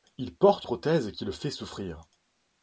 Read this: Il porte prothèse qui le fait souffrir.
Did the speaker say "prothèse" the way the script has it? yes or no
yes